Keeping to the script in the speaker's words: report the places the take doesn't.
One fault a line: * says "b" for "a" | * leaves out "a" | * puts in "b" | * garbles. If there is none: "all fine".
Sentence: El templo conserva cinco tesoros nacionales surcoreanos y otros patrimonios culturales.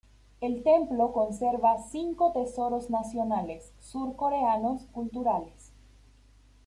* leaves out "y otros patrimonios"